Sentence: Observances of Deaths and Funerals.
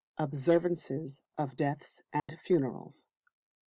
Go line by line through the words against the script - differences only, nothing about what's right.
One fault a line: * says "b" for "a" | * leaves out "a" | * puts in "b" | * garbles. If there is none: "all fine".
all fine